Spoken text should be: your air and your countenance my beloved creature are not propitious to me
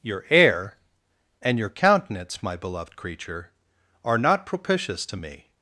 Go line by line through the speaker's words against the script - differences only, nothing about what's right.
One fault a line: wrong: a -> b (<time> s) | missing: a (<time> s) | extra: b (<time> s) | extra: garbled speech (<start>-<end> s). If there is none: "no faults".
no faults